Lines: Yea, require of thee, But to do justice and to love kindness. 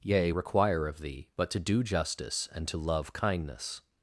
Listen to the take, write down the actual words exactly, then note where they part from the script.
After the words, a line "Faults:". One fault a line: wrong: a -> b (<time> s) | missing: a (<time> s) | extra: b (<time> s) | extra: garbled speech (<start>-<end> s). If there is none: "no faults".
Yea, require of thee, But to do justice and to love kindness.
Faults:
no faults